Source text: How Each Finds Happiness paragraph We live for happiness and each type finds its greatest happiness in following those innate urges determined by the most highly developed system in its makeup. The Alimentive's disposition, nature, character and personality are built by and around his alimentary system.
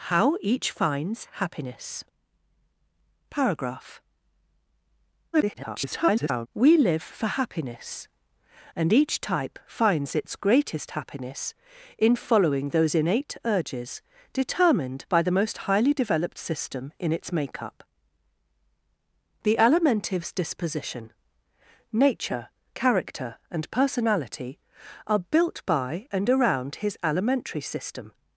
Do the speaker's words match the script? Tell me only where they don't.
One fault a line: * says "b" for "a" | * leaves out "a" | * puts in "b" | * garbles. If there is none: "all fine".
* garbles